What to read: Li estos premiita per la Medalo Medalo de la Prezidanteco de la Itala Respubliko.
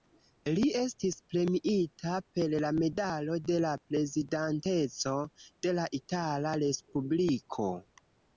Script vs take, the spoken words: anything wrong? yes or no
yes